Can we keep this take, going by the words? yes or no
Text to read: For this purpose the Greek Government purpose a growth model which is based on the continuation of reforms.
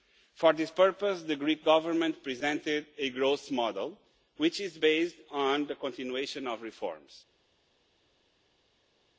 no